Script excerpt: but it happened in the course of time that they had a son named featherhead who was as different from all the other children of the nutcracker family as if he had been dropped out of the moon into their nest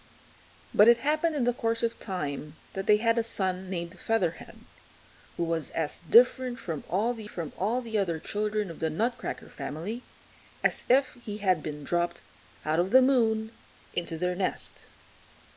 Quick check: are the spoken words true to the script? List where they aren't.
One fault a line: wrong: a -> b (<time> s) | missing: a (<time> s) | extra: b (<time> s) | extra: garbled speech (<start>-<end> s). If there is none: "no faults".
extra: from all the (7.3 s)